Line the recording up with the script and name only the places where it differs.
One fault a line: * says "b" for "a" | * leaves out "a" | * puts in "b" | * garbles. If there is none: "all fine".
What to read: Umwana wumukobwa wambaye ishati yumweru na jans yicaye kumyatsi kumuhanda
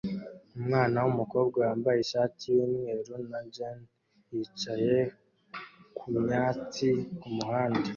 all fine